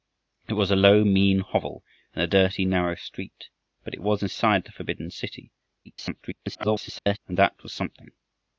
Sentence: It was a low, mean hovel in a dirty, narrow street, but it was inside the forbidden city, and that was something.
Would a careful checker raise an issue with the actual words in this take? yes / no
yes